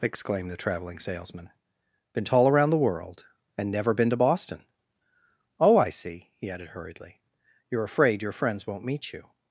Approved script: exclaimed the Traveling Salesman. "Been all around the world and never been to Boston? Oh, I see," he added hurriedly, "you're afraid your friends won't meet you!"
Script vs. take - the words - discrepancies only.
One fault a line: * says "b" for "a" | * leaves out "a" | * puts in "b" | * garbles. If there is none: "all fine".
* says "tall" for "all"